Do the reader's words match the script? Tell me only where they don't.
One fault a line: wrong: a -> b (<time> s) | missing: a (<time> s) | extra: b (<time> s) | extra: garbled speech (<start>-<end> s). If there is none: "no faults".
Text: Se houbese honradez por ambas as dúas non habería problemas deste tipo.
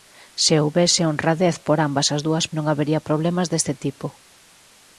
no faults